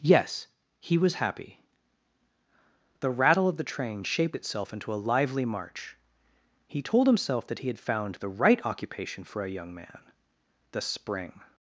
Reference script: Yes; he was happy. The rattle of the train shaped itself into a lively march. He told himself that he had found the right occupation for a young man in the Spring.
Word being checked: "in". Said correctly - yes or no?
no